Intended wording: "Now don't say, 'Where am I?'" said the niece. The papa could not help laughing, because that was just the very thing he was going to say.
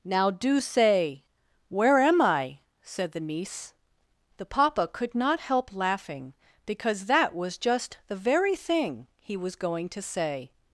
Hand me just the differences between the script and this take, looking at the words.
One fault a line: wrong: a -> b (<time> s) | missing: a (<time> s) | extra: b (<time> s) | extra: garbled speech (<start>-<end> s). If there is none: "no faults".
wrong: don't -> do (0.3 s)